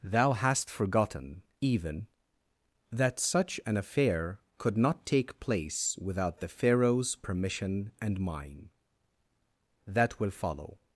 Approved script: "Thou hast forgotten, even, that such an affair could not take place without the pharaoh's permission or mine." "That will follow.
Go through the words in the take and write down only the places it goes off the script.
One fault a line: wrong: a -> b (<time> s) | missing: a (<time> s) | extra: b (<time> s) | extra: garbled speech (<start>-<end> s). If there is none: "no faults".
wrong: or -> and (8.0 s)